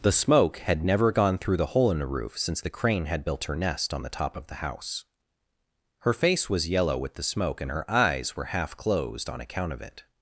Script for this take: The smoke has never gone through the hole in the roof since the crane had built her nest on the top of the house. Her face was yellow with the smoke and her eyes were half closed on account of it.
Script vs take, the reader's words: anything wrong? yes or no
yes